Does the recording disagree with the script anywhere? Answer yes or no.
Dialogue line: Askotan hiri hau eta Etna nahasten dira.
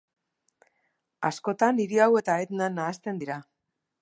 no